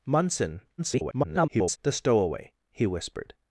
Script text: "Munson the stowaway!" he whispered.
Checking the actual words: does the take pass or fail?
fail